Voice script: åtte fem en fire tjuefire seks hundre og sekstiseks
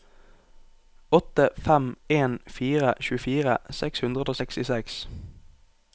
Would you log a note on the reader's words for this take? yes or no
no